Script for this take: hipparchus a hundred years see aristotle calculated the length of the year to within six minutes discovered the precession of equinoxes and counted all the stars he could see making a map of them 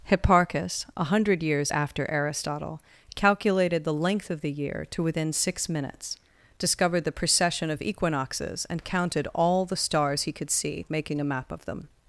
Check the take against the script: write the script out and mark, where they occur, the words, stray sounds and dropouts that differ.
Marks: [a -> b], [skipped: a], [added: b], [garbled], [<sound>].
hipparchus a hundred years [see -> after] aristotle calculated the length of the year to within six minutes discovered the precession of equinoxes and counted all the stars he could see making a map of them